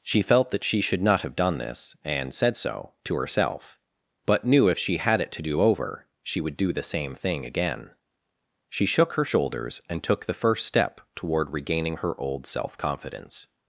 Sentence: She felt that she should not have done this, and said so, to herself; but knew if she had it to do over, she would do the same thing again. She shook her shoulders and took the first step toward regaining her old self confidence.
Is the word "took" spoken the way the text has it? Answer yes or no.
yes